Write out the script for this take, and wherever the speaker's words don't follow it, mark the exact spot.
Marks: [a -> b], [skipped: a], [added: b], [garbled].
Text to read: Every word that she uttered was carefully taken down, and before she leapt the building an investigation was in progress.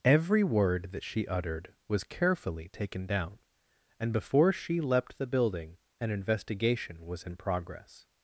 Every word that she uttered was carefully taken down, and before she leapt the building an investigation was in progress.